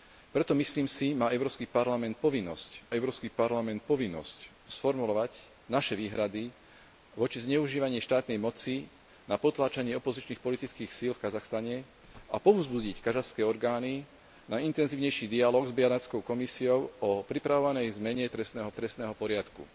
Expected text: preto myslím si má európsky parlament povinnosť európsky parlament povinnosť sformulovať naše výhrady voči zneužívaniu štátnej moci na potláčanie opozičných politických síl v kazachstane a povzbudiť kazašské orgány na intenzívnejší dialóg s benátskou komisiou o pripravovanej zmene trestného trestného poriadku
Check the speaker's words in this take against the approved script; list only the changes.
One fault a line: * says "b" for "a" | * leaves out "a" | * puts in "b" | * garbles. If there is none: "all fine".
all fine